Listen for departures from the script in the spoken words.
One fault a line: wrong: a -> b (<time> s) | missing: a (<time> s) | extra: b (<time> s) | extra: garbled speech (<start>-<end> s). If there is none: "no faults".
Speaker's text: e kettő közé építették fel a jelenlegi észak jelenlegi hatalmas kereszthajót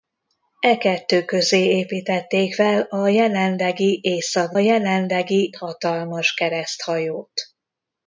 no faults